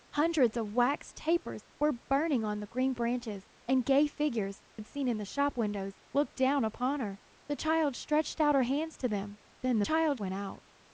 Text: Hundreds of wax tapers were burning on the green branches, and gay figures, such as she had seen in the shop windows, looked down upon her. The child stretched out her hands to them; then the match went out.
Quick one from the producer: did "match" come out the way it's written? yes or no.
no